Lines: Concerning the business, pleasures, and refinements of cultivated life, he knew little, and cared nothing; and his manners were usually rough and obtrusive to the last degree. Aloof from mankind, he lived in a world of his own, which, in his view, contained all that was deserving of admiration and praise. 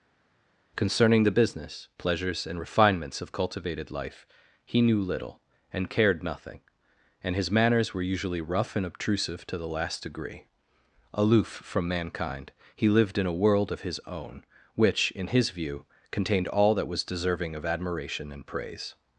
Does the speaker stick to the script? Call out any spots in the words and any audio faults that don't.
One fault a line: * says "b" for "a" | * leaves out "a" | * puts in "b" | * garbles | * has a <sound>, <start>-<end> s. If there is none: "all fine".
all fine